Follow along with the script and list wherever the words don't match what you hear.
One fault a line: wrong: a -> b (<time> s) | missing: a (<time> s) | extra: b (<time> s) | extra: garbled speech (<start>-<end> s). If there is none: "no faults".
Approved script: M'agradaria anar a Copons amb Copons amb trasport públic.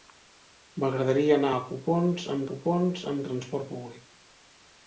no faults